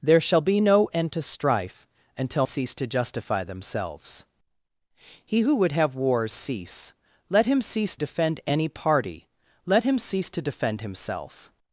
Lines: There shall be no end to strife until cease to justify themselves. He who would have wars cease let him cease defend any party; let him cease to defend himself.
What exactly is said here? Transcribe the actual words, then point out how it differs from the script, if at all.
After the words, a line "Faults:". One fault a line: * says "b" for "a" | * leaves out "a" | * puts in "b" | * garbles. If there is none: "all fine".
There shall be no end to strife until cease to justify themselves. He who would have wars cease let him cease defend any party; let him cease to defend himself.
Faults:
all fine